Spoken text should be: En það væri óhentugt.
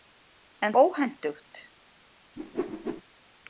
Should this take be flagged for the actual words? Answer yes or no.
yes